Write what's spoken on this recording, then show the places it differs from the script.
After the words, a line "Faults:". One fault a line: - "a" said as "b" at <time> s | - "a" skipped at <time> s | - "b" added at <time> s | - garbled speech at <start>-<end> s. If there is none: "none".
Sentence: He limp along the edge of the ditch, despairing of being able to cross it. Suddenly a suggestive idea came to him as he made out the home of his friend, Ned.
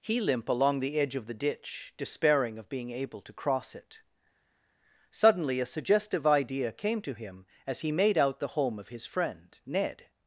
He limp along the edge of the ditch, despairing of being able to cross it. Suddenly a suggestive idea came to him as he made out the home of his friend, Ned.
Faults:
none